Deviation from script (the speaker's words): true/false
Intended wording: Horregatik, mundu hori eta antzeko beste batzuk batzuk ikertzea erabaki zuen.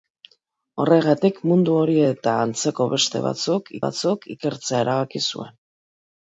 false